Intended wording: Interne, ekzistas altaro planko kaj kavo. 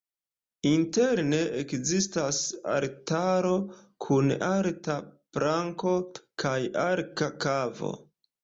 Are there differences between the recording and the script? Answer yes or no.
yes